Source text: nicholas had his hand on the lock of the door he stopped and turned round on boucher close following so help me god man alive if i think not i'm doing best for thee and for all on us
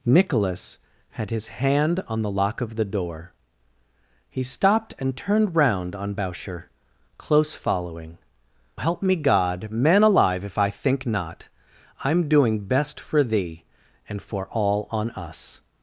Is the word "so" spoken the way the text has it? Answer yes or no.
no